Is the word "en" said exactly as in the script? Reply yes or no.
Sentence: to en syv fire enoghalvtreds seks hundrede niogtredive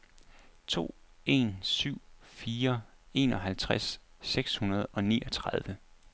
yes